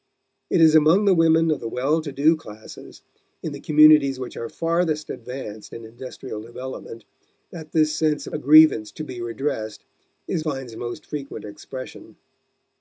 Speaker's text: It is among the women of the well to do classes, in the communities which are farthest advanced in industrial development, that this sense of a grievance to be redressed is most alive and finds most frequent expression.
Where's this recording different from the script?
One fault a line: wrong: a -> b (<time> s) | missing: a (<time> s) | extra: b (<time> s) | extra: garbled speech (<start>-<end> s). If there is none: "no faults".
missing: most alive and (10.4 s)